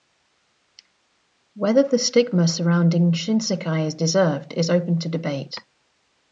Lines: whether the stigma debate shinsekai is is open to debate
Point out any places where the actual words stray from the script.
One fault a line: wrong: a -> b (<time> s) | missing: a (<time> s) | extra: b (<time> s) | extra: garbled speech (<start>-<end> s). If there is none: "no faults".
wrong: debate -> surrounding (2.5 s)
extra: deserved (3.9 s)